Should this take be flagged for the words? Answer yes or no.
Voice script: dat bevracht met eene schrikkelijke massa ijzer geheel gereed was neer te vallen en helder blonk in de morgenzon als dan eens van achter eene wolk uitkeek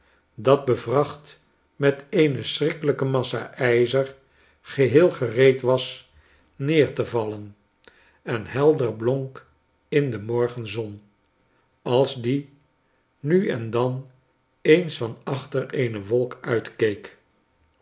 yes